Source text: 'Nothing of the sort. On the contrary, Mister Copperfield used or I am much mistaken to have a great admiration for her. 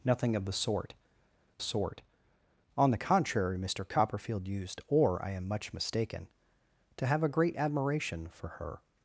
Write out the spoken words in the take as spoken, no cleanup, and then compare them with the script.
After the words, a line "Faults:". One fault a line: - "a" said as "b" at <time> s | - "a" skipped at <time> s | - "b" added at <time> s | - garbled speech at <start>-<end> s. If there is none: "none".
'Nothing of the sort sort. On the contrary, Mister Copperfield used or I am much mistaken to have a great admiration for her.
Faults:
- "sort" added at 1.6 s